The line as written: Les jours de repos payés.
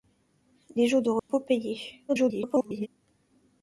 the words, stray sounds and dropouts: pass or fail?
fail